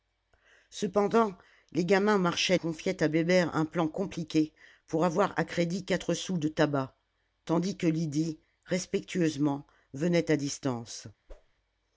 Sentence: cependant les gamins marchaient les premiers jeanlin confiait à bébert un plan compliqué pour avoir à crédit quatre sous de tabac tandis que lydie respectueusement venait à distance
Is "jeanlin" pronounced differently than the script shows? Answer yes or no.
yes